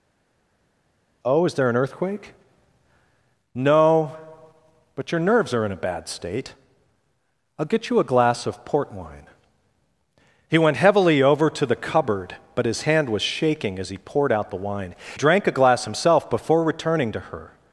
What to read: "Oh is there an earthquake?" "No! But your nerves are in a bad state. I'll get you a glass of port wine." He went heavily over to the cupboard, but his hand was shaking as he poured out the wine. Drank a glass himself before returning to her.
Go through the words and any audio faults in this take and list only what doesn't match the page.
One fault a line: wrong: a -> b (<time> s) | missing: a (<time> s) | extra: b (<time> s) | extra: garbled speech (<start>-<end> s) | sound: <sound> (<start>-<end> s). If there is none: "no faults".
no faults